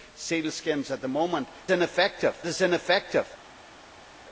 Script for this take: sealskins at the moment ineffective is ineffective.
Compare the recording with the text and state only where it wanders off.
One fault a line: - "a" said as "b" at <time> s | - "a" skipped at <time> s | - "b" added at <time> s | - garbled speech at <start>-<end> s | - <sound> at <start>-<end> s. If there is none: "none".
none